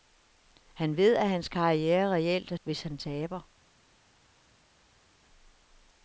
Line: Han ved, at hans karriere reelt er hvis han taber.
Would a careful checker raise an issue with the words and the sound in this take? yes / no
no